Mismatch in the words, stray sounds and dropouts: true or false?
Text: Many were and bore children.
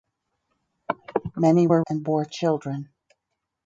false